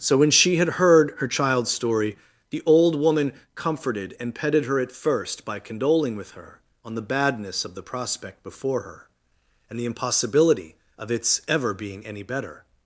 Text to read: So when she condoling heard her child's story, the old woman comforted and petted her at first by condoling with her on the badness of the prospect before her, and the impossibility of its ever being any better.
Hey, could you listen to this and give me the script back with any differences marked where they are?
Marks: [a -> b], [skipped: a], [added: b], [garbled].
So when she [condoling -> had] heard her child's story, the old woman comforted and petted her at first by condoling with her on the badness of the prospect before her, and the impossibility of its ever being any better.